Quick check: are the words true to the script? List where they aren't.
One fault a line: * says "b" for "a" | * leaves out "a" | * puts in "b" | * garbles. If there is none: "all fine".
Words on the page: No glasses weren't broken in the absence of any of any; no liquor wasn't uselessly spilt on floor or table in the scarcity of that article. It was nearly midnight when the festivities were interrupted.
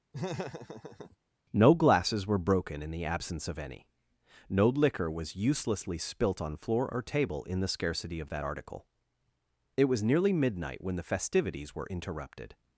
* says "were" for "weren't"
* leaves out "of any"
* says "was" for "wasn't"